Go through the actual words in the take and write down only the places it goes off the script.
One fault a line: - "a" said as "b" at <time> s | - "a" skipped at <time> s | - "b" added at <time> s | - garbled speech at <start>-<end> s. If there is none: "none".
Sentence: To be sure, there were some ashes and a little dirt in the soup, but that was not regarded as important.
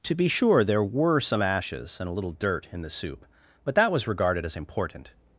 - "not" skipped at 4.1 s